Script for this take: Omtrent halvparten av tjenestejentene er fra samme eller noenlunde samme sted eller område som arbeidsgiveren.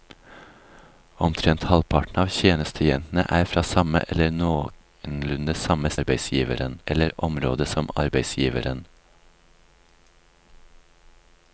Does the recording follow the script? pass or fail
fail